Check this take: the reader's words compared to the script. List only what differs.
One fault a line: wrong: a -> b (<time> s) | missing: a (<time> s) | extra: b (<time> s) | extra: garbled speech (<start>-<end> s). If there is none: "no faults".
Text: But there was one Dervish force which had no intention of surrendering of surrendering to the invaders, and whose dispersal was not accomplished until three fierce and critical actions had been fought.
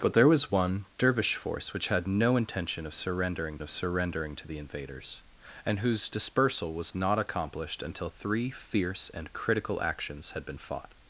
no faults